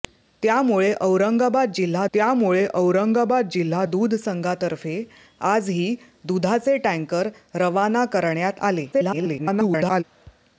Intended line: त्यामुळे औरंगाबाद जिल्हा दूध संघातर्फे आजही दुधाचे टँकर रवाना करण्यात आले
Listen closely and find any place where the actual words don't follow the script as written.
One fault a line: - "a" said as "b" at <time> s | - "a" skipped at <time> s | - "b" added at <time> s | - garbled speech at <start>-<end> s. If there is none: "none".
- "त्यामुळे औरंगाबाद जिल्हा" added at 2.1 s
- garbled speech at 8.9-10.0 s